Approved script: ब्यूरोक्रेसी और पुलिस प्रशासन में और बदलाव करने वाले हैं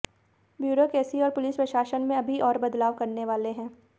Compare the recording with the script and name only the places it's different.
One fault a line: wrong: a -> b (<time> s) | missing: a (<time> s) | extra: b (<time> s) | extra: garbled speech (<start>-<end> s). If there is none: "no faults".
extra: अभी (2.2 s)